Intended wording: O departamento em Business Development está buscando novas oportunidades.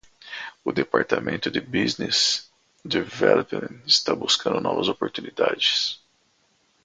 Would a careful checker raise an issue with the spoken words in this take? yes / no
yes